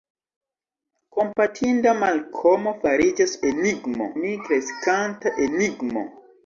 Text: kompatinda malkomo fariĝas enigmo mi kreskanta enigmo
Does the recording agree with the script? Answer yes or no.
yes